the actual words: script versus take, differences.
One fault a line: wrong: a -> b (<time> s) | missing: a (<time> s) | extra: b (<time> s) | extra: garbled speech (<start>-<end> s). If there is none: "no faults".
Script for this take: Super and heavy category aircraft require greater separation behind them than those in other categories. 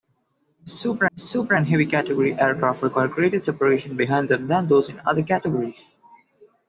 extra: super (1.2 s)